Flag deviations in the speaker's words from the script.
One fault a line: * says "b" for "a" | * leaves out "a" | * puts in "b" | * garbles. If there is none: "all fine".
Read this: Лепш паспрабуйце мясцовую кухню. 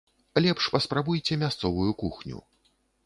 all fine